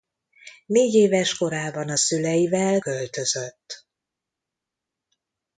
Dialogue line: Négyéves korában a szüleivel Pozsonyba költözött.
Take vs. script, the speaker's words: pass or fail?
fail